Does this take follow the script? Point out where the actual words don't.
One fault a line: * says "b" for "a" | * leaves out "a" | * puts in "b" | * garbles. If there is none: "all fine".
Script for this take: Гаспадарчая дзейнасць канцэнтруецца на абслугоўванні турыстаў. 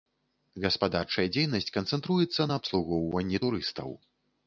all fine